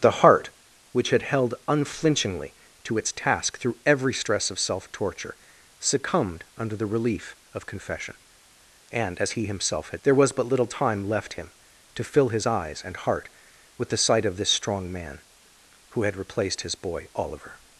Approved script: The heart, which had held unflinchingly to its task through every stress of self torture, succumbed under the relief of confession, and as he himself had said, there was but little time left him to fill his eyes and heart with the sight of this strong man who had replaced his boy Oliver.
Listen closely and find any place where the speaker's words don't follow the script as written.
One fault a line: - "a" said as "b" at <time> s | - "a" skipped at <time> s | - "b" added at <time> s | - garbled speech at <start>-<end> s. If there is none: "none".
- "said" skipped at 10.0 s